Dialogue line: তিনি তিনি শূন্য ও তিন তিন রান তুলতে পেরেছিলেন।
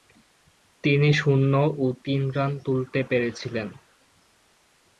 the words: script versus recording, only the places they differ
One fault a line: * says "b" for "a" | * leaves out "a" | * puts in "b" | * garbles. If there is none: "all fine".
* leaves out "তিনি"
* leaves out "তিন"